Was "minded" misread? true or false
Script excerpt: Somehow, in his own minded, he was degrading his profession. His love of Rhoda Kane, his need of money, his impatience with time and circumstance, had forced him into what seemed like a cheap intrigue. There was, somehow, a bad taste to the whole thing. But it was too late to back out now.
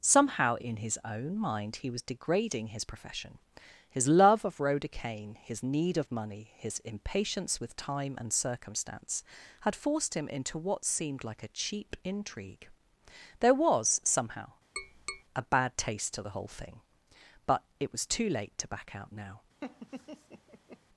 true